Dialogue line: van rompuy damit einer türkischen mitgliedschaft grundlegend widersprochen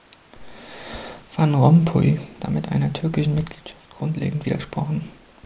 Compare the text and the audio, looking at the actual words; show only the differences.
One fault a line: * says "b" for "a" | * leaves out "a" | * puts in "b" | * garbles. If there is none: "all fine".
all fine